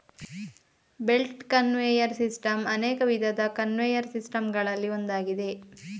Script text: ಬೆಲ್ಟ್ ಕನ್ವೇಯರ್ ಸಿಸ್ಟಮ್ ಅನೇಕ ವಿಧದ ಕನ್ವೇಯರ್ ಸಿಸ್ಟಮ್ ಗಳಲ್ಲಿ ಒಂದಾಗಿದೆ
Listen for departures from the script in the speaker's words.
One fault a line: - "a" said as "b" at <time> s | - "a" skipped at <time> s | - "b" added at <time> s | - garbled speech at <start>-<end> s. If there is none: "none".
none